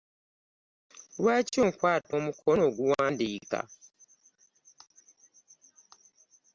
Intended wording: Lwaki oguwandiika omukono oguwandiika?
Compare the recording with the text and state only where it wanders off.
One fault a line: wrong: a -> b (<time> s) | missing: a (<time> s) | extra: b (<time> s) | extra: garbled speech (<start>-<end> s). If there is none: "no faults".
wrong: oguwandiika -> onkwata (1.6 s)